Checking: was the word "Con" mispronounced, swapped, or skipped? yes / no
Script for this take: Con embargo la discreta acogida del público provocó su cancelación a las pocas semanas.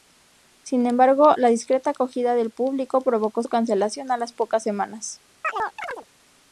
yes